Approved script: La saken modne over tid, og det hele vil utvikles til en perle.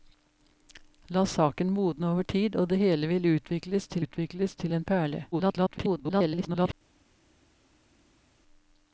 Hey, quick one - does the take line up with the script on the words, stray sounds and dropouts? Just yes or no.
no